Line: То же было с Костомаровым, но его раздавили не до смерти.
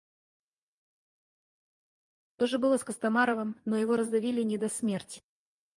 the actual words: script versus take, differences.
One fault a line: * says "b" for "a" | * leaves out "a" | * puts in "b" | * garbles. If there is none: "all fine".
all fine